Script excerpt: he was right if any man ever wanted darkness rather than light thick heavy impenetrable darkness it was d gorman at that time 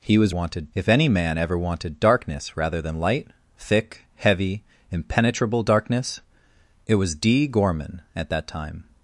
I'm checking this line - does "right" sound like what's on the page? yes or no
no